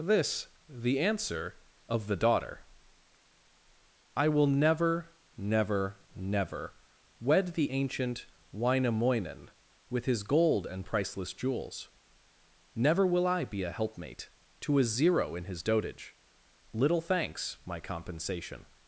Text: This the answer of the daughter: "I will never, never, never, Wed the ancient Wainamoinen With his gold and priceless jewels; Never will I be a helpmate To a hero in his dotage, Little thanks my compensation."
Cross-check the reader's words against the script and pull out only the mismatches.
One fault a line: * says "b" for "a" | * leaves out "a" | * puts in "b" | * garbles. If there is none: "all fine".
* says "zero" for "hero"